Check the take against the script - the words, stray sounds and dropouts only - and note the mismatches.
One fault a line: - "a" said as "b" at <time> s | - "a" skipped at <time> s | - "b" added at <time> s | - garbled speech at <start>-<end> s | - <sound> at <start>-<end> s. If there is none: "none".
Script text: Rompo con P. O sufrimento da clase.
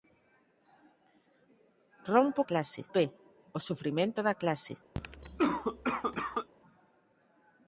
- "con" said as "clase" at 2.4 s
- cough at 4.9-6.5 s